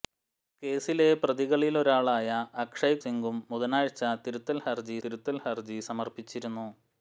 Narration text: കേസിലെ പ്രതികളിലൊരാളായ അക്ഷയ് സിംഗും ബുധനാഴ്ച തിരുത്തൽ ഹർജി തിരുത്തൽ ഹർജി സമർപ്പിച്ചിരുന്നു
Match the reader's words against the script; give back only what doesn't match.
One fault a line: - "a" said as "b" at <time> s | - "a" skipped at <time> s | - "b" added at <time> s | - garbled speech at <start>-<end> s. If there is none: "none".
none